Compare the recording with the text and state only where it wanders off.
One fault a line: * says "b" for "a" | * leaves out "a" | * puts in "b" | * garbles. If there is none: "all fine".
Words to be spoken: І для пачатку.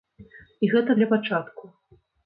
* puts in "гэта"